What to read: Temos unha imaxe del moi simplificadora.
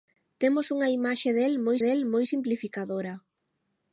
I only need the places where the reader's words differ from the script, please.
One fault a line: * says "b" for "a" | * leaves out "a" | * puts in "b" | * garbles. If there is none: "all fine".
* puts in "del moi"